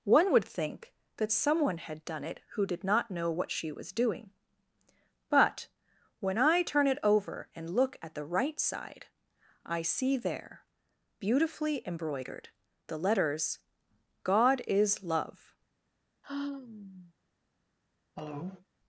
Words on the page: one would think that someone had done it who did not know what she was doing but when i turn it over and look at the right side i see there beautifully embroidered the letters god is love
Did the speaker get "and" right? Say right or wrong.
right